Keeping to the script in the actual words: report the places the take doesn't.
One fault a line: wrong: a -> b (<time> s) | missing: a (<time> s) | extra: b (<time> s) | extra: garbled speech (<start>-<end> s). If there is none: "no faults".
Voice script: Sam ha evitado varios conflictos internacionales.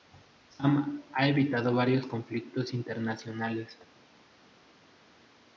no faults